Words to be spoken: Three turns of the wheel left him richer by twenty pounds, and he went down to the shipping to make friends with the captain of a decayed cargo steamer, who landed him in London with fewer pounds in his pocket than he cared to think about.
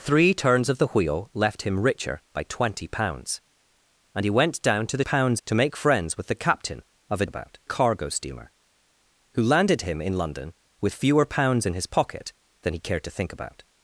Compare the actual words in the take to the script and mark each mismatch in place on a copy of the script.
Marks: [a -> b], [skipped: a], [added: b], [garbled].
Three turns of the wheel left him richer by twenty pounds, and he went down to the [shipping -> pounds] to make friends with the captain of a [decayed -> about] cargo steamer, who landed him in London with fewer pounds in his pocket than he cared to think about.